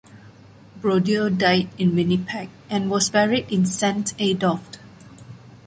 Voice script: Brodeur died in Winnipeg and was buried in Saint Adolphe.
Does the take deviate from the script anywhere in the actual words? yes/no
no